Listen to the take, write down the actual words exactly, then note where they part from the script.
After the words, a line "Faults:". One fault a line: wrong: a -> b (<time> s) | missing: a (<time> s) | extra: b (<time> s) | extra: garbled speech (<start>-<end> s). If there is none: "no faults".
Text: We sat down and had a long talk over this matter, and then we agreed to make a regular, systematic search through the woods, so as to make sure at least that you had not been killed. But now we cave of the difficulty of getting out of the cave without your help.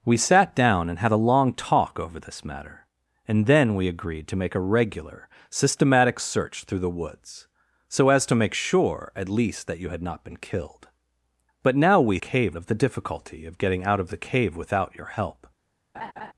We sat down and had a long talk over this matter, and then we agreed to make a regular, systematic search through the woods, so as to make sure at least that you had not been killed. But now we cave of the difficulty of getting out of the cave without your help.
Faults:
no faults